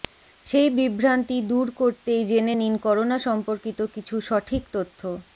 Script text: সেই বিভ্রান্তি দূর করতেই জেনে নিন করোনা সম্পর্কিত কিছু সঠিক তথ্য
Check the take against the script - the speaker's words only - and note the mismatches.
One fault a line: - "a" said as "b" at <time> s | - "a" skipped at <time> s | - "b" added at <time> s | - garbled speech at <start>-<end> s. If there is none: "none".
none